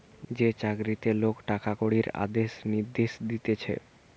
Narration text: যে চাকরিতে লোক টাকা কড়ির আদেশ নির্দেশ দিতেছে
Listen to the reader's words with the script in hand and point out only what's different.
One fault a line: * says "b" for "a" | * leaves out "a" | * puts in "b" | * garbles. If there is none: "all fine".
all fine